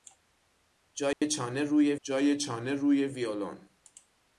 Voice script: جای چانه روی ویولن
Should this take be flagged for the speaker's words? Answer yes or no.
yes